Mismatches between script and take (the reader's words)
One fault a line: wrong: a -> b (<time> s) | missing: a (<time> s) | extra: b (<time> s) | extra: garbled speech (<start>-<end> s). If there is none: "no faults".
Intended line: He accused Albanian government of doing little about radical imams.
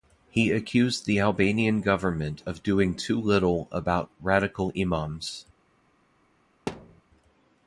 extra: the (1.1 s)
extra: too (3.0 s)